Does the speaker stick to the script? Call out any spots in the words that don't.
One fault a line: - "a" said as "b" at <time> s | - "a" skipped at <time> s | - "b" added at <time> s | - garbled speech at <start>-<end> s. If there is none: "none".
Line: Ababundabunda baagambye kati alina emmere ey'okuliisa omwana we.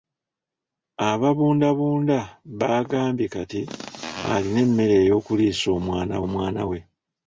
- "omwana" added at 6.2 s